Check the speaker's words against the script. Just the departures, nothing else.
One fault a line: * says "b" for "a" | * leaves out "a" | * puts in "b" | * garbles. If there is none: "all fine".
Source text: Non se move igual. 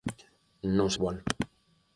* leaves out "move"